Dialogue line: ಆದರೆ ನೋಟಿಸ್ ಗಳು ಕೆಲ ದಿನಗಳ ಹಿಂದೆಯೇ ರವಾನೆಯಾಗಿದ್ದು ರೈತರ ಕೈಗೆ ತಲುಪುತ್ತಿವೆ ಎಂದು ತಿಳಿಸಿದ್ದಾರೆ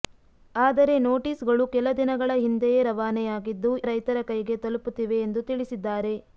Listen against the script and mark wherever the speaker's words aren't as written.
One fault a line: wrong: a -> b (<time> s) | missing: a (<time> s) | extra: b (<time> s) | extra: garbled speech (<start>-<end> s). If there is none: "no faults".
no faults